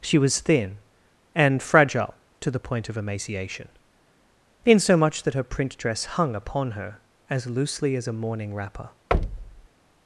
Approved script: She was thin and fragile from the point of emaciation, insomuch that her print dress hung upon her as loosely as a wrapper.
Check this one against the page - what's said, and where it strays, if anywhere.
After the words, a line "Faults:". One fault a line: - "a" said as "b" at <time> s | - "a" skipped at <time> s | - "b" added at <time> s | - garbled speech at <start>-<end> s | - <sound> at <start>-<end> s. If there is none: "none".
She was thin and fragile to the point of emaciation, insomuch that her print dress hung upon her as loosely as a morning wrapper.
Faults:
- "from" said as "to" at 2.4 s
- "morning" added at 8.1 s
- thud at 9.1-9.7 s